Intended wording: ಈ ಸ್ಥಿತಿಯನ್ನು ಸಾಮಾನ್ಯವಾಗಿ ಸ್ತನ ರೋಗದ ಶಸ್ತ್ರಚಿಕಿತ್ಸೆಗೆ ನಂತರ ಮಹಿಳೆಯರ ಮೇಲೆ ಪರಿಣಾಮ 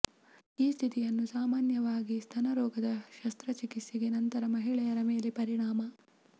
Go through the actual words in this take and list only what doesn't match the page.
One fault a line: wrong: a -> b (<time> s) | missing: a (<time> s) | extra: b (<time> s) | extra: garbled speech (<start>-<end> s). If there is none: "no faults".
no faults